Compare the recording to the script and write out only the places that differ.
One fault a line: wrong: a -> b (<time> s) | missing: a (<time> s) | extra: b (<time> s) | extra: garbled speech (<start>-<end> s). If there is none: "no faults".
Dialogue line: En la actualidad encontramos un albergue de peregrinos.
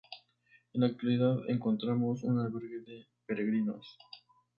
no faults